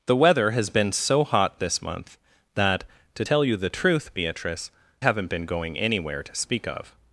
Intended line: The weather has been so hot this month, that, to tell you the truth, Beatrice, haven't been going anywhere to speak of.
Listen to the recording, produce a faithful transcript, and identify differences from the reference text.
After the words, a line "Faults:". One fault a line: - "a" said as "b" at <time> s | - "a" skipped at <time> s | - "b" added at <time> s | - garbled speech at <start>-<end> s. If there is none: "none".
The weather has been so hot this month, that, to tell you the truth, Beatrice, haven't been going anywhere to speak of.
Faults:
none